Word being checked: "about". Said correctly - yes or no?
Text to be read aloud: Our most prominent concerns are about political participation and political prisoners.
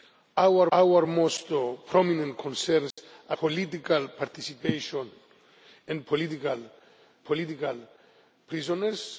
no